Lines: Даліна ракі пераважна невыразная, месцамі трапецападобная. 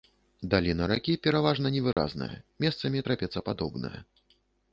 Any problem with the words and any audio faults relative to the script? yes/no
yes